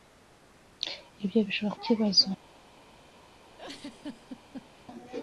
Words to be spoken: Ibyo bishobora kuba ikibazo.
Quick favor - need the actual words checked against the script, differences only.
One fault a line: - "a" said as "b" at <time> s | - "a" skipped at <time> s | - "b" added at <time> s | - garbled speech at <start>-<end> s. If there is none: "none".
- "kuba" skipped at 1.8 s